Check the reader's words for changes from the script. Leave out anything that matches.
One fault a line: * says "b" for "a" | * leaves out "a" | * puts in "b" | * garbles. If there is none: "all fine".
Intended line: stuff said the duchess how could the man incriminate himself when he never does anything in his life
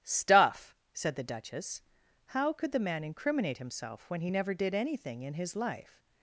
* says "did" for "does"